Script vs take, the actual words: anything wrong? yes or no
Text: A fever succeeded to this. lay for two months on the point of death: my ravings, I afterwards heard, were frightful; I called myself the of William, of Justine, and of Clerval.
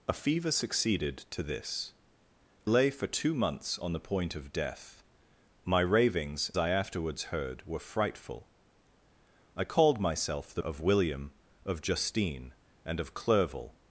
no